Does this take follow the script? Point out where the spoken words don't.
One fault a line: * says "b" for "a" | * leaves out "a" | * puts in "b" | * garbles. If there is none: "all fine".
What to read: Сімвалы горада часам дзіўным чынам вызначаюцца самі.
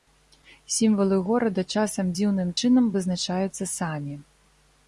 all fine